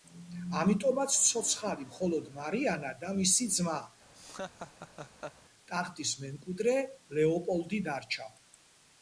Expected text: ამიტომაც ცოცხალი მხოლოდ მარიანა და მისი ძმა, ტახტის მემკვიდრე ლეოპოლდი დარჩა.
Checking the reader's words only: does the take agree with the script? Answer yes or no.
yes